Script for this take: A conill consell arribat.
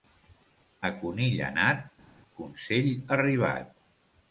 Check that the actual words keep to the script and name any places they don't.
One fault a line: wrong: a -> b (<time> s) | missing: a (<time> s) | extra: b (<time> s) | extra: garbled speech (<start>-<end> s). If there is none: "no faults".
extra: anat (1.5 s)